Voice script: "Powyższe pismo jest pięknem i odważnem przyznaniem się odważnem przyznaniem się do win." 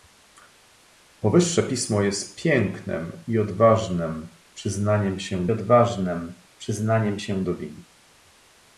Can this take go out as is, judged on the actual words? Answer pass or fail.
pass